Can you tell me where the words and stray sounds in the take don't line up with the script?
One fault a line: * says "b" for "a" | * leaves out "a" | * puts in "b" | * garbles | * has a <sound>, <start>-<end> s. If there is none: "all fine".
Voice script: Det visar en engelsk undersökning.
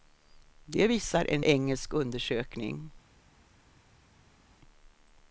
all fine